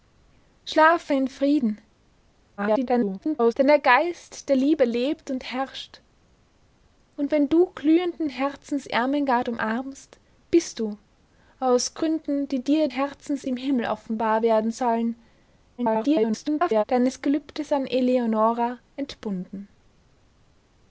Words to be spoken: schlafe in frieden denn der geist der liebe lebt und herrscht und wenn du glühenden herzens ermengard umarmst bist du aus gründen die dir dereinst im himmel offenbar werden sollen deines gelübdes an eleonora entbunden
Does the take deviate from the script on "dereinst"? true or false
true